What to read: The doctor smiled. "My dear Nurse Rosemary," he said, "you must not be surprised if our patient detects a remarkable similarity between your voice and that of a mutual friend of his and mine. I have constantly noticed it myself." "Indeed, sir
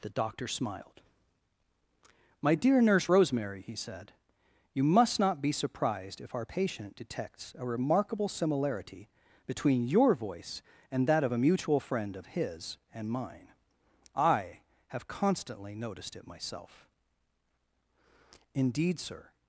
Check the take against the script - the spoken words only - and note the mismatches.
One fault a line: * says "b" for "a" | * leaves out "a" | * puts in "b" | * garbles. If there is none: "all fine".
all fine